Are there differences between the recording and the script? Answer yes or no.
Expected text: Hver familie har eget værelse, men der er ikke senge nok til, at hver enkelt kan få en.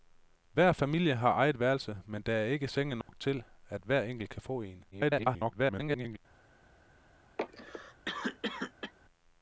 yes